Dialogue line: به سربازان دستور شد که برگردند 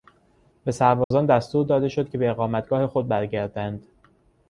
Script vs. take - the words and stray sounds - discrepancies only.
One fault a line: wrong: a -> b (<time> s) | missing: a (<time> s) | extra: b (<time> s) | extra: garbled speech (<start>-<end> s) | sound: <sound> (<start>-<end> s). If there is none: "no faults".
sound: dropout (1.0-1.1 s)
extra: داده (1.6 s)
extra: به اقامتگاه خود (2.2 s)